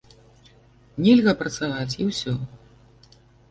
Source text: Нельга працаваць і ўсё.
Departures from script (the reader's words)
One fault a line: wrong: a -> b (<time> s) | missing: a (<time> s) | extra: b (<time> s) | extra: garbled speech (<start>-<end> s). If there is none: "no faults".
no faults